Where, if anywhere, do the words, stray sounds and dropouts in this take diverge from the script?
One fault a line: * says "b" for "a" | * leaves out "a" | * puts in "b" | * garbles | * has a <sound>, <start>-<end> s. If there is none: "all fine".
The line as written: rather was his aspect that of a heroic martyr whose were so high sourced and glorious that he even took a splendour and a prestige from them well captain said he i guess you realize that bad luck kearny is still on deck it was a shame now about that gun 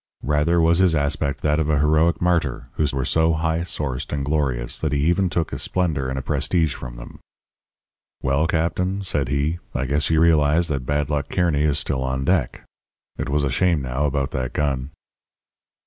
all fine